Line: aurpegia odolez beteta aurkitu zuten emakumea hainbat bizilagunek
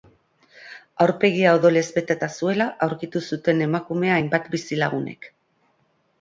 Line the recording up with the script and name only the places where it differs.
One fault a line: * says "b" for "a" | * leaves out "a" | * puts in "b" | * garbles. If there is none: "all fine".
* puts in "zuela"